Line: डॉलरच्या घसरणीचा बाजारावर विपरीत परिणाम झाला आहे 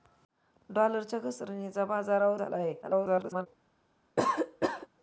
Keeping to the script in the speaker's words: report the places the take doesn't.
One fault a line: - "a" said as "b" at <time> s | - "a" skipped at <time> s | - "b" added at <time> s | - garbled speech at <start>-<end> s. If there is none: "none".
- "विपरीत परिणाम" skipped at 2.4 s
- garbled speech at 2.8-3.5 s